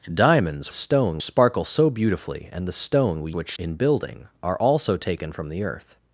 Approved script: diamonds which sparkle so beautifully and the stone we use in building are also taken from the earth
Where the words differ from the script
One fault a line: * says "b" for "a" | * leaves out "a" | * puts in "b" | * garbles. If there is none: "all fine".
* says "stone" for "which"
* says "which" for "use"